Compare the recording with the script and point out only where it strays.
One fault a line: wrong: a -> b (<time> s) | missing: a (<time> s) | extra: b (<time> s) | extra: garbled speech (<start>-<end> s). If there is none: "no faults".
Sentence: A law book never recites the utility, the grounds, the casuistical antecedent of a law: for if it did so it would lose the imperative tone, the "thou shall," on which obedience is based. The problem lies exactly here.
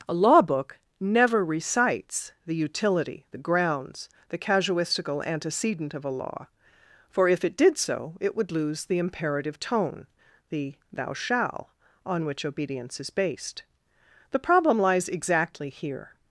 no faults